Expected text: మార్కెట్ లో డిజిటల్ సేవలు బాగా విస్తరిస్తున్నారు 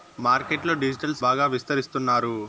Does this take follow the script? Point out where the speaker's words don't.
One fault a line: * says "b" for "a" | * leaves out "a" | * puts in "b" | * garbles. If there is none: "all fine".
* leaves out "సేవలు"